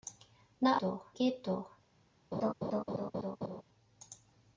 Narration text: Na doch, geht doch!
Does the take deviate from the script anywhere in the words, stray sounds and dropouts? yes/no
yes